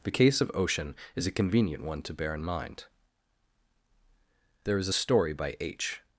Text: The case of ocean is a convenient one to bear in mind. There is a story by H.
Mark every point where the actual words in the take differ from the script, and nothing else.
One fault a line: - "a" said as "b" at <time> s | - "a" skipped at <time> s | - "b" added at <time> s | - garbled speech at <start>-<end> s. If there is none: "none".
none